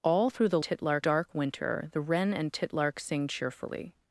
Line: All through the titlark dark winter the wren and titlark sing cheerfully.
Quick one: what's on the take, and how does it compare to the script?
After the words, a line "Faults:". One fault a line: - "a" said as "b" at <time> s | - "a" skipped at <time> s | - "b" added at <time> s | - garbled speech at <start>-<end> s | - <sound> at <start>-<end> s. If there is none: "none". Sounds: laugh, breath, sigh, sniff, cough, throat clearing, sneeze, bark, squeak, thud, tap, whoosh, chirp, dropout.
All through the titlark dark winter the wren and titlark sing cheerfully.
Faults:
none